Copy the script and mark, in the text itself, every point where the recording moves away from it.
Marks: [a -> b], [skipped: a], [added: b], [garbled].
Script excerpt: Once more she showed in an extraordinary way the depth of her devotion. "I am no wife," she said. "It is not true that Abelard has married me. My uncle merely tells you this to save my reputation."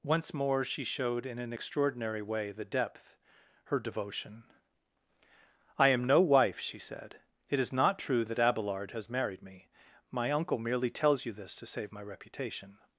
Once more she showed in an extraordinary way the depth [skipped: of] her devotion. "I am no wife," she said. "It is not true that Abelard has married me. My uncle merely tells you this to save my reputation."